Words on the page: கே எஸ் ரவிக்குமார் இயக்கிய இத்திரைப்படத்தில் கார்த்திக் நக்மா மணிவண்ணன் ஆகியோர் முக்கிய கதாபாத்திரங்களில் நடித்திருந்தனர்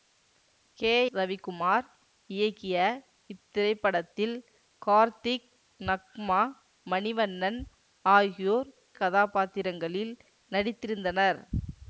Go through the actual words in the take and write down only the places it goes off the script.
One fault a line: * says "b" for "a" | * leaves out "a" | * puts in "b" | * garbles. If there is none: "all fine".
* leaves out "எஸ்"
* leaves out "முக்கிய"